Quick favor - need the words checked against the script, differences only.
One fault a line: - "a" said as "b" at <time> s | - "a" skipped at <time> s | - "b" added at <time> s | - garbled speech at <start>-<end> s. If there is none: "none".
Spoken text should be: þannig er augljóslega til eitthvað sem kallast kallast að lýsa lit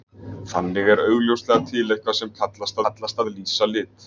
none